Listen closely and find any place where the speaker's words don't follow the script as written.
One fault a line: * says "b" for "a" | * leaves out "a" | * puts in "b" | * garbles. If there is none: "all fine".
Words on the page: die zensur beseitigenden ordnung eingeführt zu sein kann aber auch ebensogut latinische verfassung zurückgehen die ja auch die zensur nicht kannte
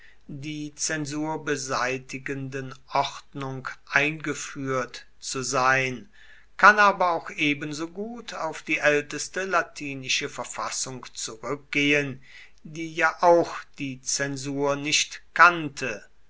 * puts in "auf die älteste"